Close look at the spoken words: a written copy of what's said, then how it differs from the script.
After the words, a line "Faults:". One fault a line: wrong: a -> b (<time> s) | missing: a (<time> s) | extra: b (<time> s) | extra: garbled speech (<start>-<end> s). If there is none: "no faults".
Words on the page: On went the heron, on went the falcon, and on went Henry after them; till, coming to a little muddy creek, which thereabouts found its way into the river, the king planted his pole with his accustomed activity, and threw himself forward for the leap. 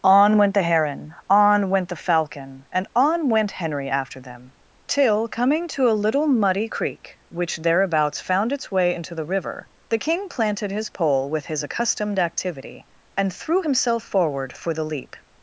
On went the heron, on went the falcon, and on went Henry after them; till, coming to a little muddy creek, which thereabouts found its way into the river, the king planted his pole with his accustomed activity, and threw himself forward for the leap.
Faults:
no faults